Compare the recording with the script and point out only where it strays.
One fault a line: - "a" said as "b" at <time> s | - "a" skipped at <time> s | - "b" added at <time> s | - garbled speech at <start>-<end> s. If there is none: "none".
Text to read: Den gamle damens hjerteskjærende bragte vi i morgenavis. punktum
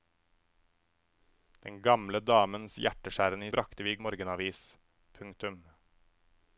none